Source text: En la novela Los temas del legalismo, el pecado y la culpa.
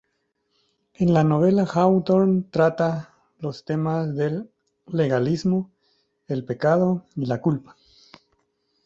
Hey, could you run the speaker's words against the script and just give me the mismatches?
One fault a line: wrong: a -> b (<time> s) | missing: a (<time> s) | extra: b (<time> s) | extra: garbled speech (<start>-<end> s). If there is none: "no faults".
extra: Hawthorne trata (1.7 s)